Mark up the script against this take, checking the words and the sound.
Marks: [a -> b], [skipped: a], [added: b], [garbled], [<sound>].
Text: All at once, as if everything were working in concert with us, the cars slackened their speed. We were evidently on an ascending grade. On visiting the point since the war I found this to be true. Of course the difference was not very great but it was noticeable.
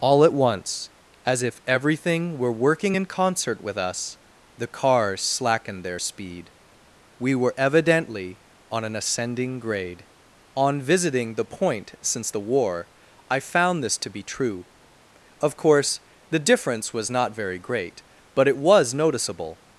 All at once, as if everything were working in concert with us, the cars slackened their speed. We were evidently on an ascending grade. On visiting the point since the war I found this to be true. Of course the difference was not very great but it was noticeable.